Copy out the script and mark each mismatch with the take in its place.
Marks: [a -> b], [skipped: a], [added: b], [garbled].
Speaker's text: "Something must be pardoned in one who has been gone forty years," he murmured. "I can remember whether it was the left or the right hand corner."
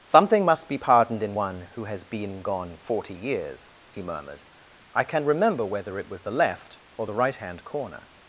"Something must be pardoned in one who has been gone forty years," he murmured. "I can remember whether it was the left or the right hand corner."